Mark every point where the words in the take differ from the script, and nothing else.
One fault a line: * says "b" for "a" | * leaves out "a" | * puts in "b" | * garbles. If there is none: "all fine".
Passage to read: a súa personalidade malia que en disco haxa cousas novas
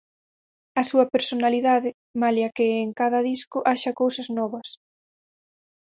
* puts in "cada"